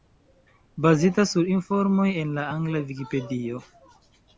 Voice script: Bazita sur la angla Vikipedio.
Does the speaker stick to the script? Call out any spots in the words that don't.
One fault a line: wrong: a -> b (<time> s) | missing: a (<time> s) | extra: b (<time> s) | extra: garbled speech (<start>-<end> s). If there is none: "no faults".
extra: informoj en (1.6 s)